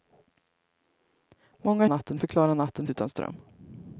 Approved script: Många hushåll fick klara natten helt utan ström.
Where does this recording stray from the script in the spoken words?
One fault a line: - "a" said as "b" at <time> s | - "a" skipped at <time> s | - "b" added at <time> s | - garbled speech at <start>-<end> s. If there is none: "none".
- "hushåll" said as "natten" at 1.9 s
- "helt" skipped at 2.9 s